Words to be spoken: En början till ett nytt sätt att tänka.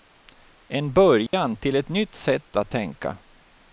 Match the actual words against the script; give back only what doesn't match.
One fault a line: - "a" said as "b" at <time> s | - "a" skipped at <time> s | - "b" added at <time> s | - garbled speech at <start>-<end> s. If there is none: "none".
none